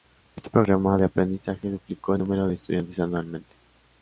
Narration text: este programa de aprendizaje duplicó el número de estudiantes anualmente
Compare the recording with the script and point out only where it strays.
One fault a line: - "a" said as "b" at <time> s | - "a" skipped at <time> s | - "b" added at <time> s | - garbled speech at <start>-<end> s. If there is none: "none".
none